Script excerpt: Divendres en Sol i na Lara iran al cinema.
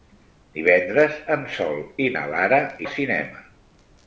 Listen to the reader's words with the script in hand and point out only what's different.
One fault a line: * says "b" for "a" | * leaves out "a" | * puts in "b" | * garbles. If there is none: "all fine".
* leaves out "iran"